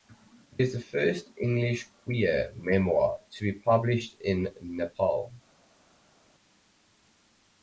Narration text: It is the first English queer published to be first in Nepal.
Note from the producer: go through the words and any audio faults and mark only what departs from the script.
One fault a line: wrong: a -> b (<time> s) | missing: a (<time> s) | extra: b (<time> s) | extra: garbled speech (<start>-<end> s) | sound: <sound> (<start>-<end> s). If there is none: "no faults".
wrong: published -> memoir (2.5 s)
wrong: first -> published (3.6 s)